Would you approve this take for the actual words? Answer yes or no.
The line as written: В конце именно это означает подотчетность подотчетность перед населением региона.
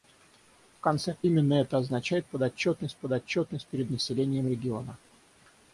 yes